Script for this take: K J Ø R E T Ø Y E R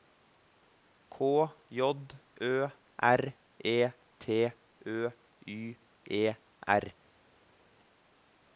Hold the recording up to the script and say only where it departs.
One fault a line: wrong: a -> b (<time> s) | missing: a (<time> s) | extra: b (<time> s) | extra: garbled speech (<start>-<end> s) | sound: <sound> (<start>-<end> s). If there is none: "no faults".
no faults